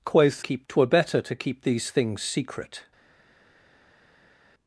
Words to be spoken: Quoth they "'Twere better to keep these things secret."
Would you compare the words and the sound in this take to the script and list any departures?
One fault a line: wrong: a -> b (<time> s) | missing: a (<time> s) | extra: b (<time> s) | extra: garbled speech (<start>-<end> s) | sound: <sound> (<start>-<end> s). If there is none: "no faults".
wrong: they -> keep (0.4 s)